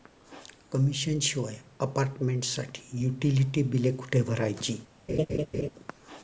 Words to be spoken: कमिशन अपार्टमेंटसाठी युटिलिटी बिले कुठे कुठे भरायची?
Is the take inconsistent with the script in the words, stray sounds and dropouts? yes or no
yes